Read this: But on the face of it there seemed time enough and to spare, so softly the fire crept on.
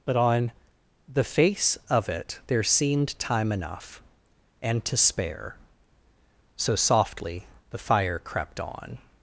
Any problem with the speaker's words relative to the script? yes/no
no